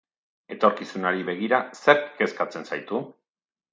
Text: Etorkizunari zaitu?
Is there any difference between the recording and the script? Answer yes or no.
yes